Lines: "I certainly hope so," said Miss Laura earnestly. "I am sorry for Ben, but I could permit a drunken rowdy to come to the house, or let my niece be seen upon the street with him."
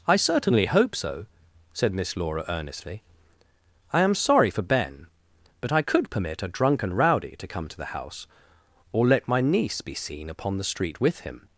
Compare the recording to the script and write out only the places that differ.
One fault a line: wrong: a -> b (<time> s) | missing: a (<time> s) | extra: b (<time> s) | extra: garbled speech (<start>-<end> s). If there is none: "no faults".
no faults